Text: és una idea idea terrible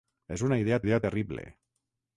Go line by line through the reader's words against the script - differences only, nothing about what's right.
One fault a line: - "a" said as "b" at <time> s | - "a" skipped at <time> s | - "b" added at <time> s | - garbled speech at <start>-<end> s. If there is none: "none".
none